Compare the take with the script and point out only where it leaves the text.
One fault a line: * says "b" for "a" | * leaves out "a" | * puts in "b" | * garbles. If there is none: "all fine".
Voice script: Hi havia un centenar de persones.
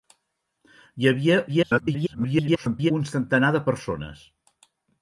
* garbles